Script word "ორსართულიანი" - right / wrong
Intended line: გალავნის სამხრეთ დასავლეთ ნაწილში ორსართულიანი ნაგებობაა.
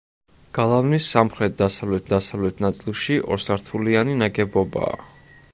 right